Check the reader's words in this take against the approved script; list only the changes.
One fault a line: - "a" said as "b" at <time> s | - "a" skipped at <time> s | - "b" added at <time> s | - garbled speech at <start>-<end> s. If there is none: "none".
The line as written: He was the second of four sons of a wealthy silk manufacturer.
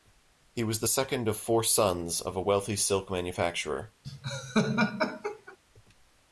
none